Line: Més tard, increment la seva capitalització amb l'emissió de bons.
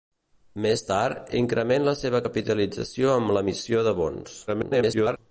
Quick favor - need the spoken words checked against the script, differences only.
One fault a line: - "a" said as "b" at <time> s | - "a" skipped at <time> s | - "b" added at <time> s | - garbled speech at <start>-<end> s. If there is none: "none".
- garbled speech at 4.5-5.2 s